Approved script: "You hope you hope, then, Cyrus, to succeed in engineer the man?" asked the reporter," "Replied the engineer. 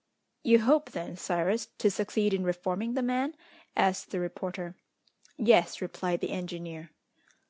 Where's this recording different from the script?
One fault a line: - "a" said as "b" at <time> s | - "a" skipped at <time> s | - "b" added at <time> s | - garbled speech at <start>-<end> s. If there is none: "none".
- "you hope" skipped at 0.9 s
- "engineer" said as "reforming" at 2.4 s
- "Yes" added at 5.4 s